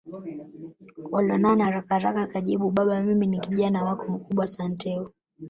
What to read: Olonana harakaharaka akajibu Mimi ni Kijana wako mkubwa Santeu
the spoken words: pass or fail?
fail